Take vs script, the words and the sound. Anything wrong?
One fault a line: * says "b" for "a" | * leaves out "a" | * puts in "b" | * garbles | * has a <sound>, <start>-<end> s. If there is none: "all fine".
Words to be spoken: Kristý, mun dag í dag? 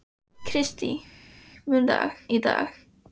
all fine